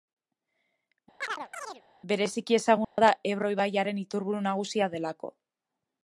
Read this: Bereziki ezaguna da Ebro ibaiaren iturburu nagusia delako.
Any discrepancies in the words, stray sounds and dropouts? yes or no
yes